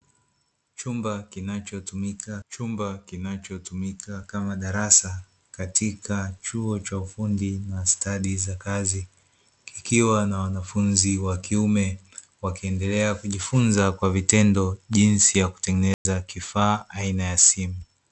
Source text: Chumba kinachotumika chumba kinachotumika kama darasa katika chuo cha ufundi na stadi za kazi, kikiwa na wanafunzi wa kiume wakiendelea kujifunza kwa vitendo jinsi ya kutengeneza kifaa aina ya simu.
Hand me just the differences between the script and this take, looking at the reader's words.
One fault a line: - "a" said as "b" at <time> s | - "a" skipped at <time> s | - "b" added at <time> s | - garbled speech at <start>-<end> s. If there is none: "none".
none